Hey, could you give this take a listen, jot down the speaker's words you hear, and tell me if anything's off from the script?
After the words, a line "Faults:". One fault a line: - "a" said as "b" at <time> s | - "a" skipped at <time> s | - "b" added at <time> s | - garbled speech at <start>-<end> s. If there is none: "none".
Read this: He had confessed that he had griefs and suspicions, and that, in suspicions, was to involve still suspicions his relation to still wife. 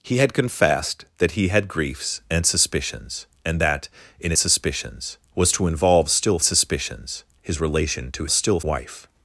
He had confessed that he had griefs and suspicions, and that, in suspicions, was to involve still suspicions his relation to still wife.
Faults:
none